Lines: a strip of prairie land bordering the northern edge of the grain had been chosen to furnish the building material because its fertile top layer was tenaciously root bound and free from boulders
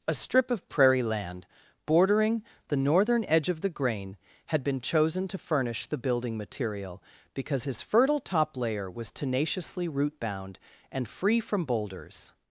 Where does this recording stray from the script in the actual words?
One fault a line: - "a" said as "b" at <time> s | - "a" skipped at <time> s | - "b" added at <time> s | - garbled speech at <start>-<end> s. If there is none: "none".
- "its" said as "his" at 7.6 s